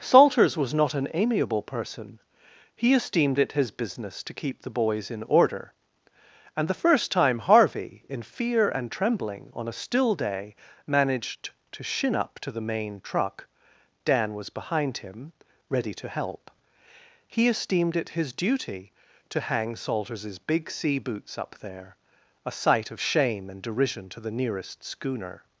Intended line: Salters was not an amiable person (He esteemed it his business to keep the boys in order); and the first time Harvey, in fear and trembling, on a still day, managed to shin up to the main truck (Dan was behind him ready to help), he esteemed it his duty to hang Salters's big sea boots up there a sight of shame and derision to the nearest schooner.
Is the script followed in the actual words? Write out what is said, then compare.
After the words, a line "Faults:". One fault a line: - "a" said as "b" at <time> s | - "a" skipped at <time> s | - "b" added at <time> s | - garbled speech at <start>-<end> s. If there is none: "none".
Salters was not an amiable person (He esteemed it his business to keep the boys in order); and the first time Harvey, in fear and trembling, on a still day, managed to shin up to the main truck (Dan was behind him ready to help), he esteemed it his duty to hang Salters's big sea boots up there a sight of shame and derision to the nearest schooner.
Faults:
none